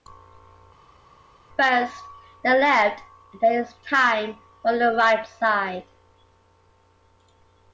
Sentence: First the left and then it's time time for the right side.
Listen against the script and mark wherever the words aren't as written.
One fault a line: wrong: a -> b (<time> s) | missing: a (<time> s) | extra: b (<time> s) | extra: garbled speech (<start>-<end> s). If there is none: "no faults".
missing: time (4.4 s)